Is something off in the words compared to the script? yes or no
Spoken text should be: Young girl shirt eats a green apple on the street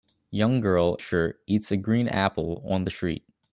no